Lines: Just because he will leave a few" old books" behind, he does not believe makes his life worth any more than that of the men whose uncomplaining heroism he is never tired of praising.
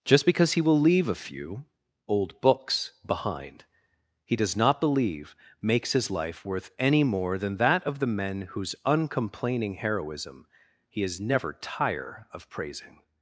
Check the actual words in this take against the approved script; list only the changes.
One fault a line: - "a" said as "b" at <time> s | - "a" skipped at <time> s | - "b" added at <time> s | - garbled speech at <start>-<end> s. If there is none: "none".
- "tired" said as "tire" at 11.5 s